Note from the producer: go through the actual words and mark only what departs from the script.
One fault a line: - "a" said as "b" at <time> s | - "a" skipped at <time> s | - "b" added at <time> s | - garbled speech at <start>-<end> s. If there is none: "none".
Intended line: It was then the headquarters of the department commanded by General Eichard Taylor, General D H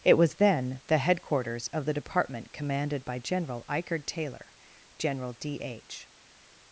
none